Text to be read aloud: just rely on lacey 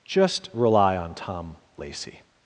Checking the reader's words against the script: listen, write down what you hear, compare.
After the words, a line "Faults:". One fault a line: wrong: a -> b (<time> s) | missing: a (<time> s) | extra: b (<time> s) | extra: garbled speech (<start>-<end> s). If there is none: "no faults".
just rely on tom lacey
Faults:
extra: tom (1.1 s)